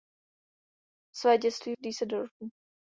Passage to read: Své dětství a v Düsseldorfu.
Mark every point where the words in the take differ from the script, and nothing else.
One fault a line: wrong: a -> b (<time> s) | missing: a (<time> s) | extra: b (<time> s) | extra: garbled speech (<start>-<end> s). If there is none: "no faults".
no faults